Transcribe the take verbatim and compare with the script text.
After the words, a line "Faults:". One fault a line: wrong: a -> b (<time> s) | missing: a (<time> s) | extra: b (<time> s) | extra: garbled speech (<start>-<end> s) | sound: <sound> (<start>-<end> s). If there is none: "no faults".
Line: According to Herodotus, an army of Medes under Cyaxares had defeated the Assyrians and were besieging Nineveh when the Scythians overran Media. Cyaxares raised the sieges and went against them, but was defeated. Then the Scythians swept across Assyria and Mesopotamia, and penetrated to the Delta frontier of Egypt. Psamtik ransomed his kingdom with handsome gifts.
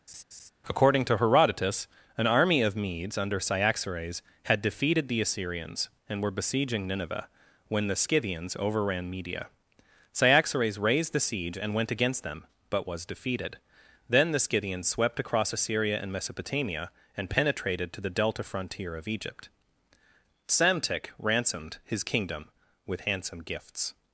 According to Herodotus, an army of Medes under Cyaxares had defeated the Assyrians and were besieging Nineveh when the Scythians overran Media. Cyaxares raised the siege and went against them, but was defeated. Then the Scythians swept across Assyria and Mesopotamia, and penetrated to the Delta frontier of Egypt. Psamtik ransomed his kingdom with handsome gifts.
Faults:
sound: laugh (0.1-0.5 s)
wrong: sieges -> siege (11.2 s)